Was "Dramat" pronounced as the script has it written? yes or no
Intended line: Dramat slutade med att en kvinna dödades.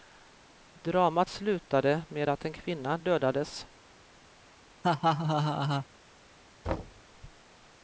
yes